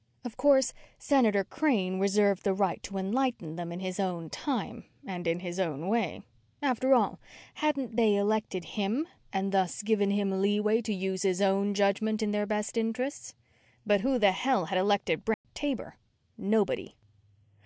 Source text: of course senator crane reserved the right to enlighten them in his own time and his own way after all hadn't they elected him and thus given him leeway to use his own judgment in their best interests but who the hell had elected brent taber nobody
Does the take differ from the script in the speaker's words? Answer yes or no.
yes